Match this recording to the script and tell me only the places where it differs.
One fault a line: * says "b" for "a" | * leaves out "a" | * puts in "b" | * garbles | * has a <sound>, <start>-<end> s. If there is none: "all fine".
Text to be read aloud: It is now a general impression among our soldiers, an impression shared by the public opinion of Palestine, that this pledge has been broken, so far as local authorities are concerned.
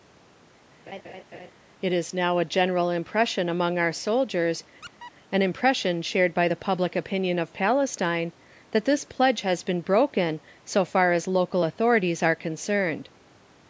* has a laugh, 0.9-1.5 s
* has a squeak, 4.8-5.1 s